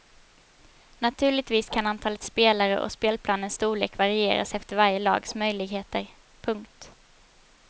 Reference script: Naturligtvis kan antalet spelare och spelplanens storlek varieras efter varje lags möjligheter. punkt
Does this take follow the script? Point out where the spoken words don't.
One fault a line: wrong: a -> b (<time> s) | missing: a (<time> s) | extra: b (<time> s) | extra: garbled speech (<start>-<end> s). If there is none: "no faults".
no faults